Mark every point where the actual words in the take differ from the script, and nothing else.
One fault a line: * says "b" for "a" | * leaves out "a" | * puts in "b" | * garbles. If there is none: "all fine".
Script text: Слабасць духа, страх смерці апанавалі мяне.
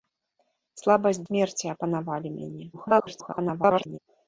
* leaves out "духа страх"
* garbles